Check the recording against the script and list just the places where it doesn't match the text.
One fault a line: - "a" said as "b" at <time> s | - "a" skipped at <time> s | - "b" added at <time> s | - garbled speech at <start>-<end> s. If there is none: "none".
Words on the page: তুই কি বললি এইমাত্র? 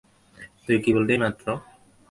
none